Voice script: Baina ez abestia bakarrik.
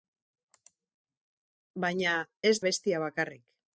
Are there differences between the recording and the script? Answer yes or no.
no